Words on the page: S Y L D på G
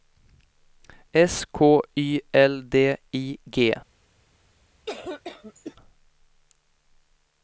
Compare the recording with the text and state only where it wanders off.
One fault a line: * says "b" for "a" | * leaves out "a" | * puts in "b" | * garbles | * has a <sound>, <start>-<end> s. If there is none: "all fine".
* puts in "K"
* says "I" for "på"
* has a cough, 4.9-5.8 s